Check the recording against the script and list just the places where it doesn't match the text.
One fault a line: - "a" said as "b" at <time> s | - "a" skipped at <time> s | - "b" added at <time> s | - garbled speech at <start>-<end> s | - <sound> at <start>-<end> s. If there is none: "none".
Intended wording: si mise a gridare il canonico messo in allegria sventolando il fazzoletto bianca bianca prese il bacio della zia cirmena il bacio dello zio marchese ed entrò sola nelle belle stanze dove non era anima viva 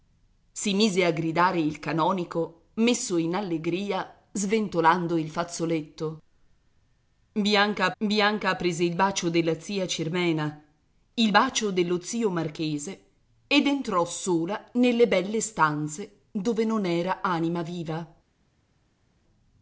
none